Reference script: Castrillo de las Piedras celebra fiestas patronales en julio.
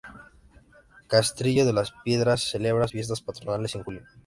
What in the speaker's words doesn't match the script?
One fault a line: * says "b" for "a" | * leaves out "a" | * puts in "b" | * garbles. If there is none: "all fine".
all fine